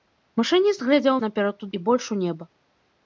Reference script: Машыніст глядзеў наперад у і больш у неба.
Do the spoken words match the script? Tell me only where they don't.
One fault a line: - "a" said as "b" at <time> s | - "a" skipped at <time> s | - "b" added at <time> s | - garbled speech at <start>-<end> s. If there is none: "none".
none